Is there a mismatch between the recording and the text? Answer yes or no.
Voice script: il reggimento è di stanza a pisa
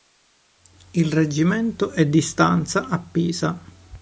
no